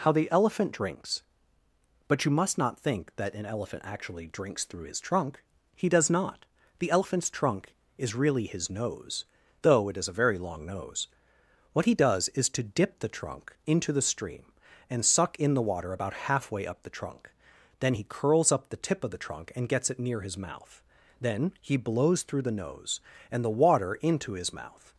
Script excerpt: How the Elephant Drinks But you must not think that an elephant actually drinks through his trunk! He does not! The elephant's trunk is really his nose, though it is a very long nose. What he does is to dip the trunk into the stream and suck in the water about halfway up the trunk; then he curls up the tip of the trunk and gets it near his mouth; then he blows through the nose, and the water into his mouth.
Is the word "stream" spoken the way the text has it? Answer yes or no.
yes